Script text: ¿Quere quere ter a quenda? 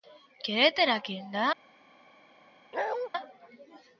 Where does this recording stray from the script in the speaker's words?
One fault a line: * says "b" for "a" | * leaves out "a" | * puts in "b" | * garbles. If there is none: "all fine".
* leaves out "quere"